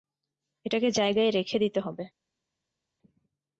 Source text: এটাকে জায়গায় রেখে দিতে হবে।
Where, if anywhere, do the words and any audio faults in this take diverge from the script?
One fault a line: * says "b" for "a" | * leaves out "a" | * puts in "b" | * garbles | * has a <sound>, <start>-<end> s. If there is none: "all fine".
all fine